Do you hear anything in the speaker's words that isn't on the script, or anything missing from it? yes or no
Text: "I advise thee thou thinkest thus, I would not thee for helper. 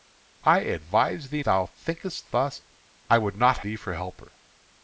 no